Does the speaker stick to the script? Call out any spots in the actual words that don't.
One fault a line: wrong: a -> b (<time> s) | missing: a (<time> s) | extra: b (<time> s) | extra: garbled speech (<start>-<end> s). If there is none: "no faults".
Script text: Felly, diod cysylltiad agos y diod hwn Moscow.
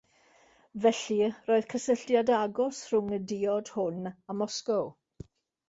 wrong: diod -> roedd (1.5 s)
extra: rhwng (2.9 s)
extra: a (4.1 s)